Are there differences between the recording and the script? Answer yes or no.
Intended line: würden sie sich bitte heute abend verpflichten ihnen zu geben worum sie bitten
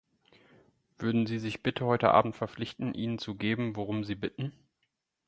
no